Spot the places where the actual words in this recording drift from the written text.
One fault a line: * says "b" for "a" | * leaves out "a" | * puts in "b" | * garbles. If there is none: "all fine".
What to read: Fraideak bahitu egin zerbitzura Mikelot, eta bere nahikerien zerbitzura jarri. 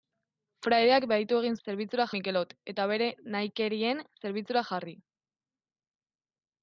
all fine